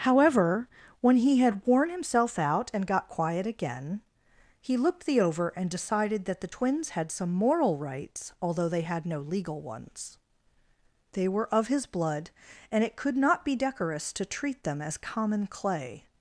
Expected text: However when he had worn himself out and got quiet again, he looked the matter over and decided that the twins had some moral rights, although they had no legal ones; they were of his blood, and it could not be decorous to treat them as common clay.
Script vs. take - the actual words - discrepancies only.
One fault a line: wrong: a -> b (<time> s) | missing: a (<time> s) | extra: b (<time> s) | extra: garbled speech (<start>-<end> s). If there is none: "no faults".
missing: matter (5.2 s)